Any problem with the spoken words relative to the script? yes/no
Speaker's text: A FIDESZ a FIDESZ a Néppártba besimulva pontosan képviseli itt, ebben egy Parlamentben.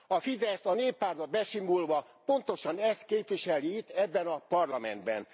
yes